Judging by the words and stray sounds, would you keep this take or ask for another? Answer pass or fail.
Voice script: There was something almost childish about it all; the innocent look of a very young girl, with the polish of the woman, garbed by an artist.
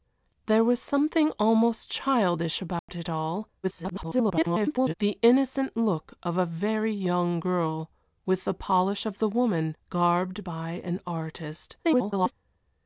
fail